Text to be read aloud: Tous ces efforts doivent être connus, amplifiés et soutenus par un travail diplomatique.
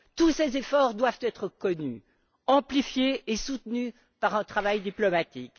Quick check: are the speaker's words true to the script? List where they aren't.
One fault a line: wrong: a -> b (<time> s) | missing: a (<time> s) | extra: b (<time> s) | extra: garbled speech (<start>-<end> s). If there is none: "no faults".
no faults